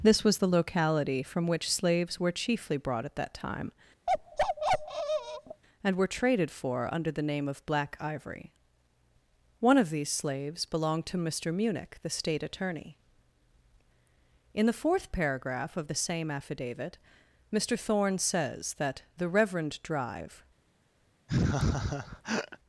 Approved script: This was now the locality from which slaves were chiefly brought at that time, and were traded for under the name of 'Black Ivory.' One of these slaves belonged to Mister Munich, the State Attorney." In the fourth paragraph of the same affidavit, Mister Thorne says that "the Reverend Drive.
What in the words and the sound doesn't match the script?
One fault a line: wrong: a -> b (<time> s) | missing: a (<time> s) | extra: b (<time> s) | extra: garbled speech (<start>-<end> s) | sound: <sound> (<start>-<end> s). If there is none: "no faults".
missing: now (0.4 s)
sound: bark (4.1-5.6 s)
sound: laugh (21.3-22.6 s)